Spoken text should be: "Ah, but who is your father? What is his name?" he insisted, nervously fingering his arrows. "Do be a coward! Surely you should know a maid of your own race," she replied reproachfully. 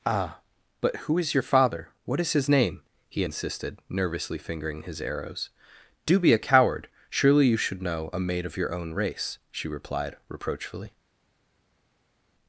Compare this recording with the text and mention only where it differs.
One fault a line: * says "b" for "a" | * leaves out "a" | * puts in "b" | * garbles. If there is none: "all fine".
all fine